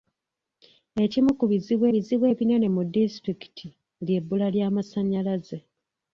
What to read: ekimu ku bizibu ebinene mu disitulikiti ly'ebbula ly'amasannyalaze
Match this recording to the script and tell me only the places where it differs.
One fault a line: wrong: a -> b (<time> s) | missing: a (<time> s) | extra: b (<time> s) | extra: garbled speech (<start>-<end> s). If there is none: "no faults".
extra: bizibu (1.9 s)